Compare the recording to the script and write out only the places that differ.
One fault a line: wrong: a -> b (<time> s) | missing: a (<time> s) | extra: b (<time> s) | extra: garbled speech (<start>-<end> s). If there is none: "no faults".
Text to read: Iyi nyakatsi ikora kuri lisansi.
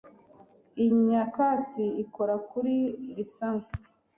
no faults